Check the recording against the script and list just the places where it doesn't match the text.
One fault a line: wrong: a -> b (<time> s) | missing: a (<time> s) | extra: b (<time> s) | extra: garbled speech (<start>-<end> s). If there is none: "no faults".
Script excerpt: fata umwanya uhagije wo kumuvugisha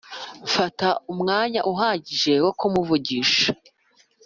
no faults